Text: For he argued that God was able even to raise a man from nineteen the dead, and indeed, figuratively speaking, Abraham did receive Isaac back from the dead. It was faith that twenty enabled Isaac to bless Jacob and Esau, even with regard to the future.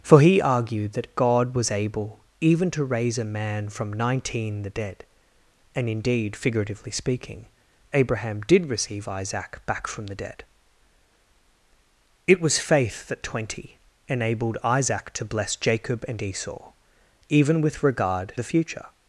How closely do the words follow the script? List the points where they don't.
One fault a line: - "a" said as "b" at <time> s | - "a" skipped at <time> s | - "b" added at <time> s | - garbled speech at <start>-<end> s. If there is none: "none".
- "to" skipped at 18.3 s